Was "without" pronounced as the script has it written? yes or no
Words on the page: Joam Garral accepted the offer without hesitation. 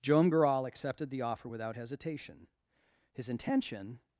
yes